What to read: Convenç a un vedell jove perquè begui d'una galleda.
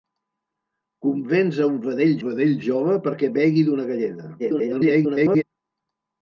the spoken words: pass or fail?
fail